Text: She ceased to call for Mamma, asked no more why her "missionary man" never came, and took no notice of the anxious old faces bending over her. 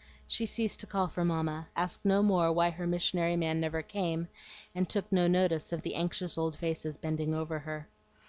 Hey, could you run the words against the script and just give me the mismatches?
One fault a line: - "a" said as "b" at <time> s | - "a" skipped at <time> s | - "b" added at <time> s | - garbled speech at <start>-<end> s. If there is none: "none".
none